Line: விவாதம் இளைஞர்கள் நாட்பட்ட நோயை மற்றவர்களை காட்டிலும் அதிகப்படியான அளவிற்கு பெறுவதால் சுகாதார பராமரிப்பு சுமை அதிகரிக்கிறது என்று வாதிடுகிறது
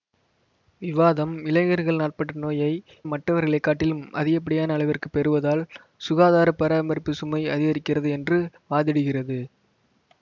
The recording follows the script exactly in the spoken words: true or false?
true